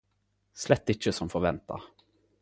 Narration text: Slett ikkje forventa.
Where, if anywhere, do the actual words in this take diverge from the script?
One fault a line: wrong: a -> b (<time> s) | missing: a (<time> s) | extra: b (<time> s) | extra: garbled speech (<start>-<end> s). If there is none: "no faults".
extra: som (1.1 s)